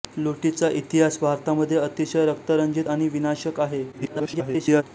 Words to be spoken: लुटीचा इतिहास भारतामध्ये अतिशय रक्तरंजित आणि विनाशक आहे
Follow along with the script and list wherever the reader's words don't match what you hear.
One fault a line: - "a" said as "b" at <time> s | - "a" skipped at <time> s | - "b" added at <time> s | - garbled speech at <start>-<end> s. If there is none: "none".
- garbled speech at 3.9-4.8 s